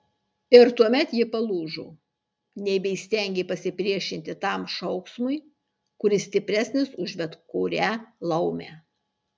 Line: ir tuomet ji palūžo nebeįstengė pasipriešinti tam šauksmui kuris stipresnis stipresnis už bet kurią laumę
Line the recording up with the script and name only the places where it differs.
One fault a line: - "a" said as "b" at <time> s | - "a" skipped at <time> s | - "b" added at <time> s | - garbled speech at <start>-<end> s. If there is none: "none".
- "stipresnis" skipped at 7.0 s